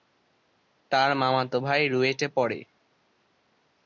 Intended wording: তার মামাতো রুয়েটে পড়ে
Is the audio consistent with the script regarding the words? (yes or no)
no